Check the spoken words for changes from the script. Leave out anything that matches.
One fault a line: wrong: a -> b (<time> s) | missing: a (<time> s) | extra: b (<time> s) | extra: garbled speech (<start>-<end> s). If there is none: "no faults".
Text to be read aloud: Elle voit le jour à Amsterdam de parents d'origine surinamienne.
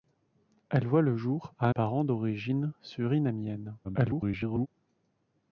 missing: Amsterdam de (1.7 s)
extra: garbled speech (3.8-4.7 s)